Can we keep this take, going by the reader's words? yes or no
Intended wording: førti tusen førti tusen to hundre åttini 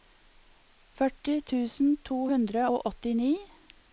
no